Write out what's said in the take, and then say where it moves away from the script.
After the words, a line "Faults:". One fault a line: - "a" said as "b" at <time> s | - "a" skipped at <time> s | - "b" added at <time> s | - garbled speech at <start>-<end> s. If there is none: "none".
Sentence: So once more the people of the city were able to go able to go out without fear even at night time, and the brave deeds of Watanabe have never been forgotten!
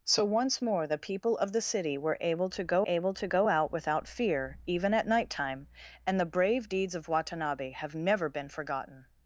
So once more the people of the city were able to go able to go out without fear even at night time, and the brave deeds of Watanabe have never been forgotten!
Faults:
none